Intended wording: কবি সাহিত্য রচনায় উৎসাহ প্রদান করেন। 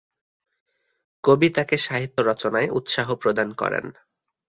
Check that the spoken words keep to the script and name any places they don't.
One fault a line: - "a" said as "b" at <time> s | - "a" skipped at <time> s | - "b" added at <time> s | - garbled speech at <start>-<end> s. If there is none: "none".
- "তাকে" added at 1.5 s